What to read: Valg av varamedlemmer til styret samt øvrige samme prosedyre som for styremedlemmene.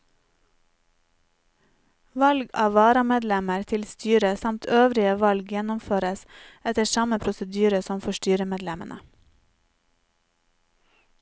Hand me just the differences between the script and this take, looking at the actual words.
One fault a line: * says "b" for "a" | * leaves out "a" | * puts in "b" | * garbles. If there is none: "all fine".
* puts in "valg gjennomføres etter"